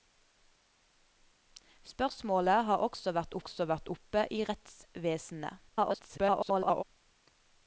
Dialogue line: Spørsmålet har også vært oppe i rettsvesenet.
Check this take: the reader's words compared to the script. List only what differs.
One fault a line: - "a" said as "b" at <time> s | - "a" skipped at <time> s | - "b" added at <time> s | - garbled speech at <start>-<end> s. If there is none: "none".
- "også vært" added at 3.4 s
- garbled speech at 5.7-6.8 s